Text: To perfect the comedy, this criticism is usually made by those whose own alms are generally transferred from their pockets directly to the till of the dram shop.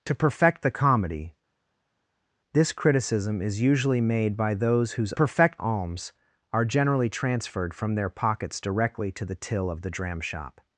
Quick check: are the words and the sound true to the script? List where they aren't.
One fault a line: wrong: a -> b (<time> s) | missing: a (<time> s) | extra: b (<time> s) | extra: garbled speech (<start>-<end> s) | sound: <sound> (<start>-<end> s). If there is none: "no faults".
wrong: own -> perfect (5.1 s)